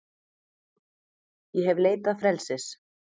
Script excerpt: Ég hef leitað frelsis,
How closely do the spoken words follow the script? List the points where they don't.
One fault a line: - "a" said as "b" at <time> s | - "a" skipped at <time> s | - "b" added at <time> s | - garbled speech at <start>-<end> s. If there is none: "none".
none